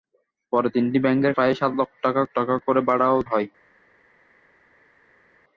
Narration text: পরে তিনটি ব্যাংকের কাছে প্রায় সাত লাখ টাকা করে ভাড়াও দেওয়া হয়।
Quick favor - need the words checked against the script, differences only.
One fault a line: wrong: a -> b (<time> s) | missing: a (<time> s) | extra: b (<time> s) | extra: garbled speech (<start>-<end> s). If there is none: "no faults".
missing: কাছে (1.3 s)
extra: টাকা (2.4 s)
missing: দেওয়া (3.2 s)